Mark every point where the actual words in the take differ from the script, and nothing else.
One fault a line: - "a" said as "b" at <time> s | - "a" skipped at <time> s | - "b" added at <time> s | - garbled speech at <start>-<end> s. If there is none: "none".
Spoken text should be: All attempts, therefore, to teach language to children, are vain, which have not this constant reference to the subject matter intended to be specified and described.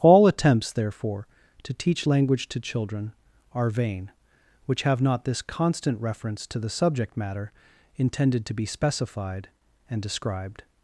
none